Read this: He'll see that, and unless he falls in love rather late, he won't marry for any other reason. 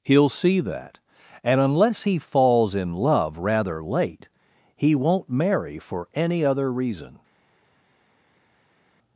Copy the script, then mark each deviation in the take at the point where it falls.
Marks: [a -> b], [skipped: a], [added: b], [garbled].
He'll see that, and unless he falls in love rather late, he won't marry for any other reason.